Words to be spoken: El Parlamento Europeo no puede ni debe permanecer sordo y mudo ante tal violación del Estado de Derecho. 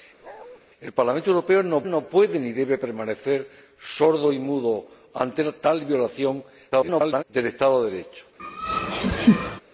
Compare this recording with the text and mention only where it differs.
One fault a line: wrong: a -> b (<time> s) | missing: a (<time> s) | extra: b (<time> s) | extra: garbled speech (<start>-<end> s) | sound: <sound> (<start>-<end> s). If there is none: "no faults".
sound: bark (0.2-0.6 s)
extra: no (1.8 s)
extra: garbled speech (6.7-7.2 s)
sound: laugh (8.4-9.6 s)